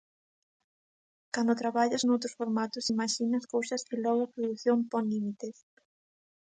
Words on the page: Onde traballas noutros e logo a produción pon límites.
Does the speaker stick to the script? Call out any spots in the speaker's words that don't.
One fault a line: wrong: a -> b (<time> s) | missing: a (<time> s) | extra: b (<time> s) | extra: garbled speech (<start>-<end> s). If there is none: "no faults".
wrong: Onde -> Cando (1.3 s)
extra: formatos imaxinas cousas (2.4 s)